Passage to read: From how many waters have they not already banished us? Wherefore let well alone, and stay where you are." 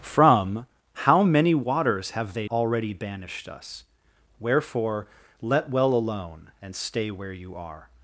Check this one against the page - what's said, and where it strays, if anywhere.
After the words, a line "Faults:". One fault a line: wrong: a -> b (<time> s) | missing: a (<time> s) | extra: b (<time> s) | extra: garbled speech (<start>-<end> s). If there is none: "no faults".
From how many waters have they already banished us? Wherefore let well alone, and stay where you are."
Faults:
missing: not (2.5 s)